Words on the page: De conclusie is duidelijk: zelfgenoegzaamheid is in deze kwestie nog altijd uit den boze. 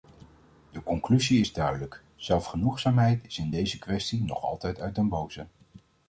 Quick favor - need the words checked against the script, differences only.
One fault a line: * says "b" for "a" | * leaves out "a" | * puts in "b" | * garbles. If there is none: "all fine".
all fine